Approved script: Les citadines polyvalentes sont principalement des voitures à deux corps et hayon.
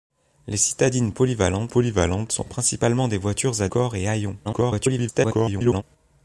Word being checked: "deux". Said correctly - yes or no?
no